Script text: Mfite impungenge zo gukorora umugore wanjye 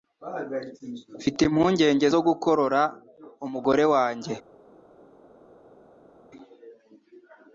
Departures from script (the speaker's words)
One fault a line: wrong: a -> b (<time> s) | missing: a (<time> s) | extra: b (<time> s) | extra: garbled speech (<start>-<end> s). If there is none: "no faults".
no faults